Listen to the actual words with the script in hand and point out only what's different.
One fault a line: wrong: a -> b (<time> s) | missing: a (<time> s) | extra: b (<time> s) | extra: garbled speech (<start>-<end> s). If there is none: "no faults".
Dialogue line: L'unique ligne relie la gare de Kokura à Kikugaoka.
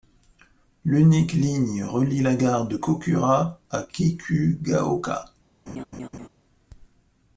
no faults